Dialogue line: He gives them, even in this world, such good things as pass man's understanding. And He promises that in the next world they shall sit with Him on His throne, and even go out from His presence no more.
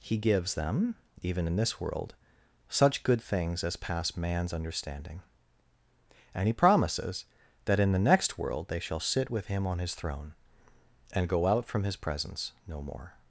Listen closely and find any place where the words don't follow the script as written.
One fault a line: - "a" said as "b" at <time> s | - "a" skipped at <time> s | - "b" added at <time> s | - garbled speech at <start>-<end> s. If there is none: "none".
- "even" skipped at 11.3 s